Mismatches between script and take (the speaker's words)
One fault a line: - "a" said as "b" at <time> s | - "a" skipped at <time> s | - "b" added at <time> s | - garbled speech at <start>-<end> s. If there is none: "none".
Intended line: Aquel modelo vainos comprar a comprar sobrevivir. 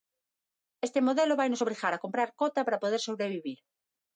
- "Aquel" said as "Este" at 0.9 s
- "comprar" said as "obrigar" at 1.6 s
- "cota para poder" added at 2.4 s